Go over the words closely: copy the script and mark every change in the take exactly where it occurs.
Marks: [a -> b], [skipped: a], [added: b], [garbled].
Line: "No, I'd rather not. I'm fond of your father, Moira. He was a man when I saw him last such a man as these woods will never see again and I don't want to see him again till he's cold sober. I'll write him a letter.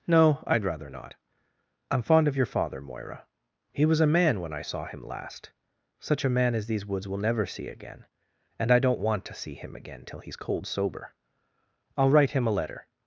"No, I'd rather not. I'm fond of your father, Moira. He was a man when I saw him last such a man as these woods will never see again and I don't want to see him again till he's cold sober. I'll write him a letter.